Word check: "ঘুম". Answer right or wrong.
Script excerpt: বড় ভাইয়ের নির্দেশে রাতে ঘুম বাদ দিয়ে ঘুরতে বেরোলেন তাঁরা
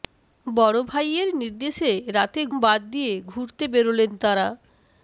wrong